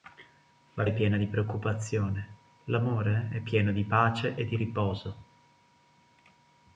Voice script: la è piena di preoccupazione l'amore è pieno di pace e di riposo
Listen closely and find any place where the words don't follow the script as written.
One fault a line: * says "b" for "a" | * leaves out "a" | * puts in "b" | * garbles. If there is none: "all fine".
all fine